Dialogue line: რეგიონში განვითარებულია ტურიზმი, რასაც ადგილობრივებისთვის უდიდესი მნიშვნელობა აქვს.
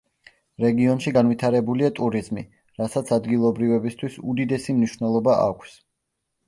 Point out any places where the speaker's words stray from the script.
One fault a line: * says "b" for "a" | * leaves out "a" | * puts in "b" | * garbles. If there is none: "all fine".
all fine